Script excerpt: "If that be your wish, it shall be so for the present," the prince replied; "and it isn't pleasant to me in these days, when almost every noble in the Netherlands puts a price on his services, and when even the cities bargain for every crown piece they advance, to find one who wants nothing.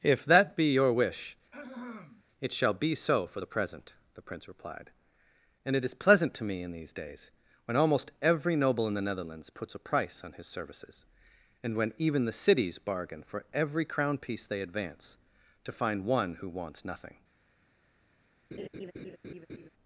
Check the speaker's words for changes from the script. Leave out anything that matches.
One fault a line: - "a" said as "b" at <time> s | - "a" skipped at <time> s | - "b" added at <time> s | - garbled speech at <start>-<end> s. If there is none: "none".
- "isn't" said as "is" at 5.8 s